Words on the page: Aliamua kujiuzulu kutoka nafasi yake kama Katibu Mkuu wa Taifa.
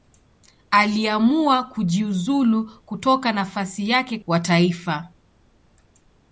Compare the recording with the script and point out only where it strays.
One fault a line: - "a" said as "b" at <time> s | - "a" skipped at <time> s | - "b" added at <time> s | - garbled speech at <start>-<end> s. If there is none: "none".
- "kama Katibu Mkuu" skipped at 4.2 s